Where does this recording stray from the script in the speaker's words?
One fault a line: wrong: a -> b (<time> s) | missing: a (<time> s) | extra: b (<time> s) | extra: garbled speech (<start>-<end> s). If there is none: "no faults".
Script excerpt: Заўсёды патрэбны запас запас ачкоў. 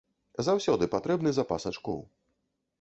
missing: запас (1.7 s)